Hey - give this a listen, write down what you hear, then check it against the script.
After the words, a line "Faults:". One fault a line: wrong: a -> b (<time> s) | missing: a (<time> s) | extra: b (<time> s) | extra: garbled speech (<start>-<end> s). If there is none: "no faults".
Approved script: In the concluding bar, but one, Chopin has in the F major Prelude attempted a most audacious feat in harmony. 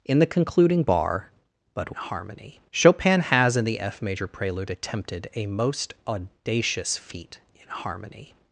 In the concluding bar, but harmony, Chopin has in the F major Prelude attempted a most audacious feat in harmony.
Faults:
wrong: one -> harmony (1.9 s)